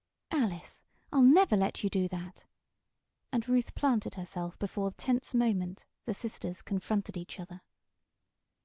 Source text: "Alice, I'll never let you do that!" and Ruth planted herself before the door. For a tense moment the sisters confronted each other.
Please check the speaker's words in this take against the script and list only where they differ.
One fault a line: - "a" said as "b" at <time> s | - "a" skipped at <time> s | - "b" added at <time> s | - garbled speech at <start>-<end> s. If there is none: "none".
- "the door For" skipped at 4.9 s